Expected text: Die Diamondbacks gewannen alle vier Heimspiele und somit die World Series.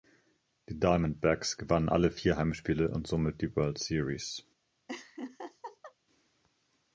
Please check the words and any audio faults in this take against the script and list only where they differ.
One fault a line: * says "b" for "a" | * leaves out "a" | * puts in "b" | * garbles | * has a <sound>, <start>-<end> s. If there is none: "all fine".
* has a laugh, 4.9-5.9 s